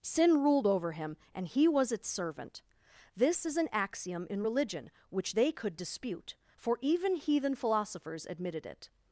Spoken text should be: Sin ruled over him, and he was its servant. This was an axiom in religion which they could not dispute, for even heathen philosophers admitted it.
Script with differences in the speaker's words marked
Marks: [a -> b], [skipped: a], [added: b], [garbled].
Sin ruled over him, and he was its servant. This [was -> is] an axiom in religion which they could [skipped: not] dispute, for even heathen philosophers admitted it.